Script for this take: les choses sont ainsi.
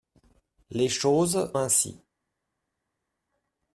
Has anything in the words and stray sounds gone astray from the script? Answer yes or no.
yes